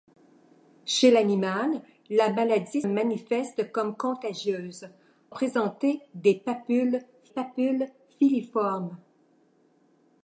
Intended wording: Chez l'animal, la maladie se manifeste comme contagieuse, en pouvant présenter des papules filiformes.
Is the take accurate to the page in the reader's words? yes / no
no